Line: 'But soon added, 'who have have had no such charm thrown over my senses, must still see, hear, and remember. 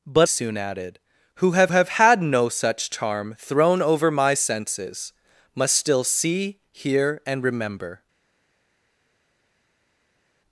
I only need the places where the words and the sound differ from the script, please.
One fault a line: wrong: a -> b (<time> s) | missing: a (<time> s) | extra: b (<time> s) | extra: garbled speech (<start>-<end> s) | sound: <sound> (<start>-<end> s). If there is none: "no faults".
no faults